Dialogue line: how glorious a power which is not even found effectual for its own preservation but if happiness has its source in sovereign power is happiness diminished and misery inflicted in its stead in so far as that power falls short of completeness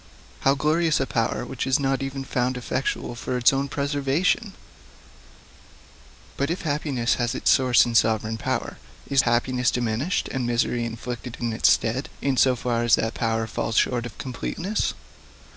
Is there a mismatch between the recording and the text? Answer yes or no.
no